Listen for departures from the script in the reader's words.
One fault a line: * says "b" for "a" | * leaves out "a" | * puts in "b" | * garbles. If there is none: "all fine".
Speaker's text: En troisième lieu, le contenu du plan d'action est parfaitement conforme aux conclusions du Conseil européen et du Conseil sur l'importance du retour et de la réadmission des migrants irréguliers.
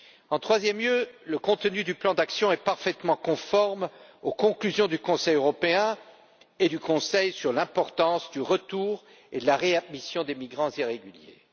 all fine